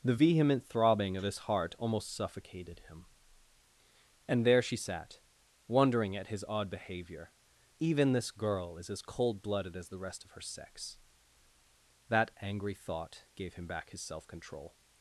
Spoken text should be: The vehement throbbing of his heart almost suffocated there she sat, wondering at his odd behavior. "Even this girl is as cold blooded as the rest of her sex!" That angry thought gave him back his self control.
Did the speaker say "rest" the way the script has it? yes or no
yes